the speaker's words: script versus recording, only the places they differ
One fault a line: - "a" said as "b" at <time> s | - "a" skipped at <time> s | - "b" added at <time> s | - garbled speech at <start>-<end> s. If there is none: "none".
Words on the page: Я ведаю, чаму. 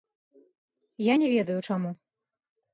- "не" added at 1.1 s